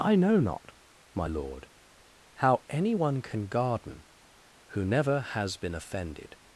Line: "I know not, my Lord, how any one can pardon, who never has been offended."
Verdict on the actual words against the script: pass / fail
fail